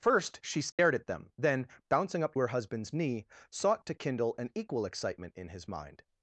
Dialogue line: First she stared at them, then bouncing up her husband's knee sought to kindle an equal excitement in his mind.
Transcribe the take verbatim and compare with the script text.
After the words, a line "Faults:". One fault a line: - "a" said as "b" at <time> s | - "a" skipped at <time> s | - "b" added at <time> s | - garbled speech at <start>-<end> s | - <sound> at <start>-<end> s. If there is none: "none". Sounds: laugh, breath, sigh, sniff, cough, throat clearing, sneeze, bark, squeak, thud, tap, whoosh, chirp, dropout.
First she stared at them, then bouncing up her husband's knee sought to kindle an equal excitement in his mind.
Faults:
- dropout at 0.7-0.8 s